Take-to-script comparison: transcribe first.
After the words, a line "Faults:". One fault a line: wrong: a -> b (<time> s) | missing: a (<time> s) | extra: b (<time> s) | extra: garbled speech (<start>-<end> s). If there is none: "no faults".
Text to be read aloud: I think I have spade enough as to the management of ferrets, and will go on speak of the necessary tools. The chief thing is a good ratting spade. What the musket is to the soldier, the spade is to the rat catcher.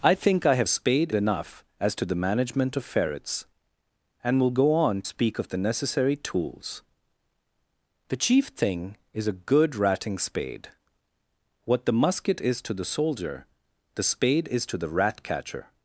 I think I have spade enough as to the management of ferrets, and will go on speak of the necessary tools. The chief thing is a good ratting spade. What the musket is to the soldier, the spade is to the rat catcher.
Faults:
no faults